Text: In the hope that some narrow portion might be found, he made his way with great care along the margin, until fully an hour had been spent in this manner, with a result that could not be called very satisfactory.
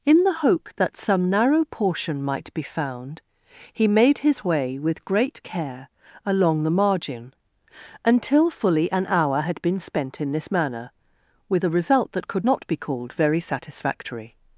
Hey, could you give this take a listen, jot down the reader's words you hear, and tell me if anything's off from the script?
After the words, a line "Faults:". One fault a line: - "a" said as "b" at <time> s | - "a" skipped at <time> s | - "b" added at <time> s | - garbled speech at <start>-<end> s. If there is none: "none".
In the hope that some narrow portion might be found, he made his way with great care along the margin, until fully an hour had been spent in this manner, with a result that could not be called very satisfactory.
Faults:
none